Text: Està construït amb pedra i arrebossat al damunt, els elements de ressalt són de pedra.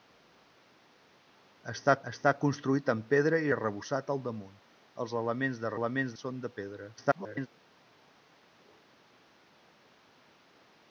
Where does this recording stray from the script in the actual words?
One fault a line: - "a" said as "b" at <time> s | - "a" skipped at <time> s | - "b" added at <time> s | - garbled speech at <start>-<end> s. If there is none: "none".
- "està" added at 2.1 s
- "ressalt" said as "elements" at 5.8 s
- garbled speech at 7.0-7.5 s